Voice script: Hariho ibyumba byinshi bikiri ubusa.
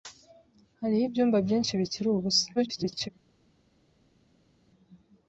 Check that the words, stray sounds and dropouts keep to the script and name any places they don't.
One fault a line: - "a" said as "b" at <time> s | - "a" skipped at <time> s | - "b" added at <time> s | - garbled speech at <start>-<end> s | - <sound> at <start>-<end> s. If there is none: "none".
- garbled speech at 2.6-3.1 s